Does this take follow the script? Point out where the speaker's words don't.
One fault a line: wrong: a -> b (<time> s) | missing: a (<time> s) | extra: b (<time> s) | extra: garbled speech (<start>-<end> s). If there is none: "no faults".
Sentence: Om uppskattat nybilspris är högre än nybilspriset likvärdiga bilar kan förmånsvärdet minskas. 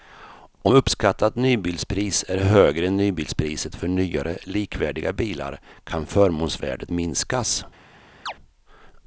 extra: för nyare (3.8 s)